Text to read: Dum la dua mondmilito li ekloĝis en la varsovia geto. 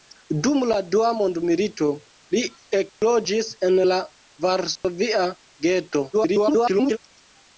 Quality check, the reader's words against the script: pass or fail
fail